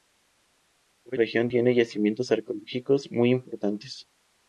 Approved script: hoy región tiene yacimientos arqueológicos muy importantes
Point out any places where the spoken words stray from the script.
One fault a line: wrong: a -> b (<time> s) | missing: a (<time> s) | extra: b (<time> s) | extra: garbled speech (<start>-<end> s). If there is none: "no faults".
no faults